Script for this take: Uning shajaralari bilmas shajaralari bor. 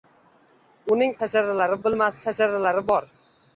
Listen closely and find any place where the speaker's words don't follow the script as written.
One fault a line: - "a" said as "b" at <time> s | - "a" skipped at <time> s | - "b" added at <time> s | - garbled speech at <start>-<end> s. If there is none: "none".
none